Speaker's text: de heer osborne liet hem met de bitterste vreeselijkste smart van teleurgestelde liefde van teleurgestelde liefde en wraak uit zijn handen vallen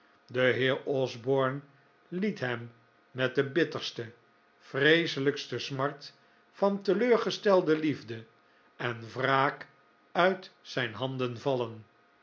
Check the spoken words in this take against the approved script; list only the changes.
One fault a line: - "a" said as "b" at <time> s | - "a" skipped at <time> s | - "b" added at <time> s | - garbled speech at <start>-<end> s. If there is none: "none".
- "van teleurgestelde liefde" skipped at 8.2 s